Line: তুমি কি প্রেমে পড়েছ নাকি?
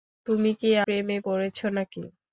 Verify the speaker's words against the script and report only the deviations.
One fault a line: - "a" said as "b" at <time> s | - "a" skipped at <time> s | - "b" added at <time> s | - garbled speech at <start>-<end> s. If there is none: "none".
none